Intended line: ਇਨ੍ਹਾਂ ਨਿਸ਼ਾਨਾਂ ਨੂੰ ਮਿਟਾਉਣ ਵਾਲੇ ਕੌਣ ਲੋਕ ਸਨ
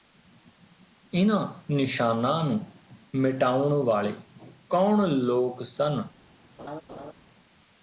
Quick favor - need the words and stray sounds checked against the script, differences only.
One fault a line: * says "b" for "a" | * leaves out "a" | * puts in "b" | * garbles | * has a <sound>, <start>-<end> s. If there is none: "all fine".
* has a laugh, 6.6-7.1 s